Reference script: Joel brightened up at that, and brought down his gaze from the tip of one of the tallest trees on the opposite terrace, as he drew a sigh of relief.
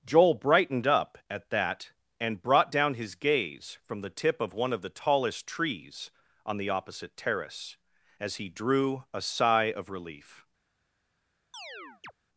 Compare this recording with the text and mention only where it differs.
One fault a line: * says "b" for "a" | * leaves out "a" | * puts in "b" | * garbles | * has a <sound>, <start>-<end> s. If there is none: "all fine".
* has a chirp, 11.5-12.1 s